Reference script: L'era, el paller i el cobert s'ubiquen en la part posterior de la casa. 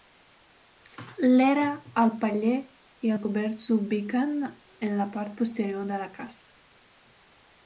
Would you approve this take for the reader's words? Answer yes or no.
yes